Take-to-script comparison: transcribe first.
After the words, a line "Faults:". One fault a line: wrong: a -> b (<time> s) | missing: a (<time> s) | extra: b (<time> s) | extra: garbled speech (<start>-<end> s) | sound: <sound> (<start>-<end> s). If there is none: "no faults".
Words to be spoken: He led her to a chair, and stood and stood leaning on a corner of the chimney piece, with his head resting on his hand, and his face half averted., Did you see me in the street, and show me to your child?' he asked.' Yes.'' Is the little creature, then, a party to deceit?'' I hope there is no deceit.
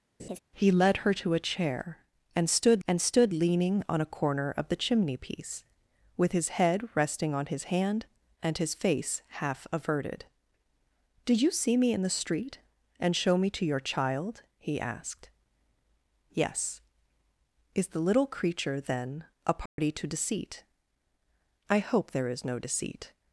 He led her to a chair, and stood and stood leaning on a corner of the chimney piece, with his head resting on his hand, and his face half averted., Did you see me in the street, and show me to your child?' he asked.' Yes.'' Is the little creature, then, a party to deceit?'' I hope there is no deceit.
Faults:
sound: laugh (0.2-0.4 s)
sound: dropout (19.7-19.8 s)